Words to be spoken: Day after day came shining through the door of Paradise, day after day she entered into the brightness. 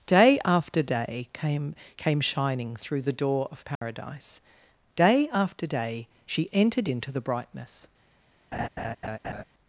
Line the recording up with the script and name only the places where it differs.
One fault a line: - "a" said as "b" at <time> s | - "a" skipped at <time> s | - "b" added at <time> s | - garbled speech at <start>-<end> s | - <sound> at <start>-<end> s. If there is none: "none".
- "came" added at 1.9 s
- dropout at 3.8-3.8 s
- laugh at 8.5-9.4 s